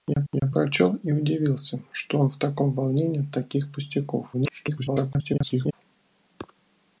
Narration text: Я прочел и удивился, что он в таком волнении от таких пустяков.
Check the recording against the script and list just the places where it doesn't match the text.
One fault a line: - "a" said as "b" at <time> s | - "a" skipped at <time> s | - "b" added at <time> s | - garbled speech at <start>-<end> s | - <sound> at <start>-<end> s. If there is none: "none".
- "я" added at 0.3 s
- garbled speech at 4.3-5.7 s